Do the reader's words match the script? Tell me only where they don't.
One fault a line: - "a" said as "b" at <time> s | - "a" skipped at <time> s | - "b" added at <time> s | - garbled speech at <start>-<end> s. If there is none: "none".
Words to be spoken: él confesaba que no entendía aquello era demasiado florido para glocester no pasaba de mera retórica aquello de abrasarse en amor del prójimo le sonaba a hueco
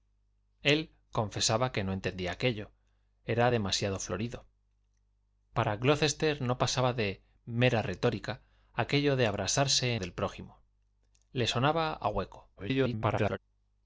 - "en amor" skipped at 9.9 s
- garbled speech at 12.6-13.4 s